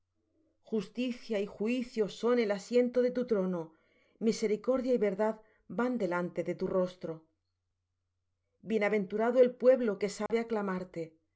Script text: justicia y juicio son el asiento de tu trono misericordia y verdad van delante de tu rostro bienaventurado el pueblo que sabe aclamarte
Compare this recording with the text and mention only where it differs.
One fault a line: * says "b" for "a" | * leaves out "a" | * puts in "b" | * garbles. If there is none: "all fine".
all fine